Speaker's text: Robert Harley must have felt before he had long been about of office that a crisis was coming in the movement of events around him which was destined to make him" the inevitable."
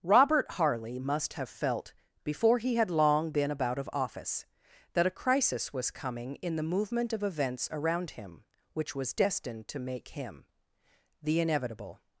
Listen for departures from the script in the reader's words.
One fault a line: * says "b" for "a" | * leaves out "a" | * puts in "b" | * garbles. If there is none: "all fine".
all fine